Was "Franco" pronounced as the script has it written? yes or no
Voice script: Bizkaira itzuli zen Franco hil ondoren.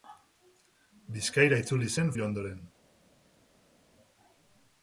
no